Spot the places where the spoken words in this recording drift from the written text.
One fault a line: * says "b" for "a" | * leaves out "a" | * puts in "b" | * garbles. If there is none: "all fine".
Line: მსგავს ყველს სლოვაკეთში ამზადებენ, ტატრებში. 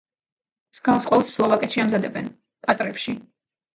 all fine